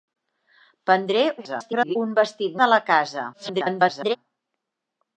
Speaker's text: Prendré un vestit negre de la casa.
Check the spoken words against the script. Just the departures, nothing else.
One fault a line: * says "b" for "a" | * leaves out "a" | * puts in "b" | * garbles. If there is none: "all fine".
* garbles
* leaves out "negre"
* garbles